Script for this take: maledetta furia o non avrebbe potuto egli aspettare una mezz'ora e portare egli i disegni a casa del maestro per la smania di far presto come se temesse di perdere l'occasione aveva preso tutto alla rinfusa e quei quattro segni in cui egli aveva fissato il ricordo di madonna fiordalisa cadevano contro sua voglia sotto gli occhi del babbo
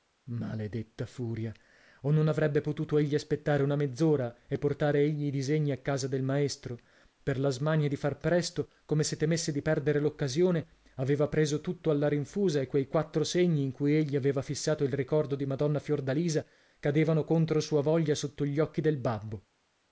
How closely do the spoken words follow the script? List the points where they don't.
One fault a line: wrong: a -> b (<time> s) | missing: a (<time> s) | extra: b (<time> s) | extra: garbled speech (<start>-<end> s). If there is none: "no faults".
no faults